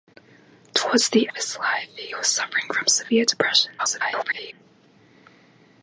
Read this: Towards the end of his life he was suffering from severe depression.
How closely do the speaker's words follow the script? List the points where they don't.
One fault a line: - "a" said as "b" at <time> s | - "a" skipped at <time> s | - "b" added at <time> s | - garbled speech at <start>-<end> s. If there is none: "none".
- "end" skipped at 1.3 s
- garbled speech at 3.8-4.5 s